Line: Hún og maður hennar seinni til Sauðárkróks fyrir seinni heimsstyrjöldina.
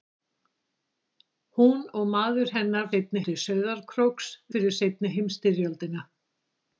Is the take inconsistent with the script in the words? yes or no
no